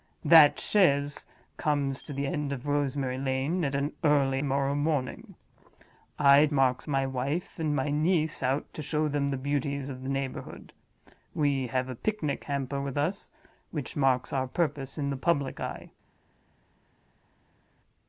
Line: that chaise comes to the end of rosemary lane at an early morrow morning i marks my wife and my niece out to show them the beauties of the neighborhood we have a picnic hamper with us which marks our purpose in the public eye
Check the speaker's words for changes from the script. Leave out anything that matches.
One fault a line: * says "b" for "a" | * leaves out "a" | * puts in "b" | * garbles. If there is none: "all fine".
all fine